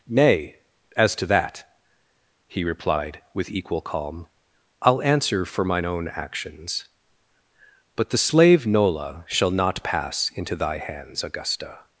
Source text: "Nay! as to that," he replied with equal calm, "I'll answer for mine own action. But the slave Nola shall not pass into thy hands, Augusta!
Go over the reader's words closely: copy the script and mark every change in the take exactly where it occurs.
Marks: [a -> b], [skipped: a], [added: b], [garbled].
"Nay! as to that," he replied with equal calm, "I'll answer for mine own [action. -> actions] But the slave Nola shall not pass into thy hands, Augusta!